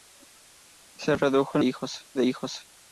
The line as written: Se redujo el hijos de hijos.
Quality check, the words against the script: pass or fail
pass